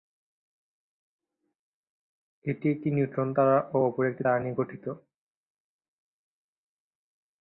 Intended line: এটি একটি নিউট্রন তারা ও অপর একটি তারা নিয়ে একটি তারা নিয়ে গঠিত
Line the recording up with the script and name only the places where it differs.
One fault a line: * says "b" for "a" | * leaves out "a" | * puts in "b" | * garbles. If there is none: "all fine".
* leaves out "একটি তারা নিয়ে"